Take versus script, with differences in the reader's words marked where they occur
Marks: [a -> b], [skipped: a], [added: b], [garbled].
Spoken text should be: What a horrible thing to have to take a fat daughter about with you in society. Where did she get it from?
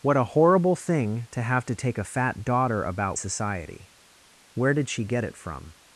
What a horrible thing to have to take a fat daughter about [skipped: with you in] society. Where did she get it from?